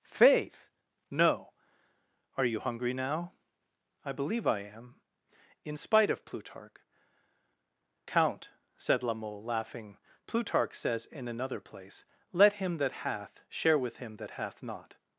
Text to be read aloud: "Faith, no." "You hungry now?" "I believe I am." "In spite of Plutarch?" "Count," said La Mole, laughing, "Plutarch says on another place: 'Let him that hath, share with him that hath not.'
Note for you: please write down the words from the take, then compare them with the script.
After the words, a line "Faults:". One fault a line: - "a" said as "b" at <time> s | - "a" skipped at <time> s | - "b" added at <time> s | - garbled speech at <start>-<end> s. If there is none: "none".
"Faith, no." "Are you hungry now?" "I believe I am." "In spite of Plutarch?" "Count," said La Mole, laughing, "Plutarch says in another place: 'Let him that hath, share with him that hath not.'
Faults:
- "Are" added at 2.4 s
- "on" said as "in" at 11.1 s